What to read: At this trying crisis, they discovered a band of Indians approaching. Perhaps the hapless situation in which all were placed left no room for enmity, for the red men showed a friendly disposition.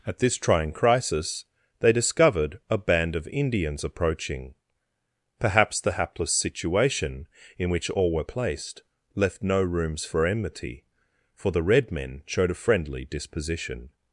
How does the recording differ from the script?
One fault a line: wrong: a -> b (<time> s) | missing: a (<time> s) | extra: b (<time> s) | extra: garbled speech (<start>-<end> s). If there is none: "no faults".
wrong: room -> rooms (9.6 s)